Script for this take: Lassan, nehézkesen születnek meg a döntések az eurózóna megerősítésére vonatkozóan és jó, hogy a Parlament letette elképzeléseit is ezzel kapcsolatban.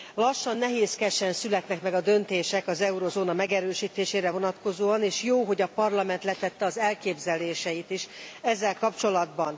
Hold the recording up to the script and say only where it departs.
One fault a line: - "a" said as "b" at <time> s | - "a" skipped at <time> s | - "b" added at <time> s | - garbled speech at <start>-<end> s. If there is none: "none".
- "az" added at 6.6 s